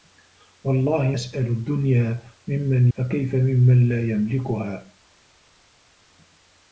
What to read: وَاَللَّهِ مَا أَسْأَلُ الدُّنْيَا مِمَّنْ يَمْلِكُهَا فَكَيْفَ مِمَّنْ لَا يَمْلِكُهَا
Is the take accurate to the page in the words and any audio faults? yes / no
no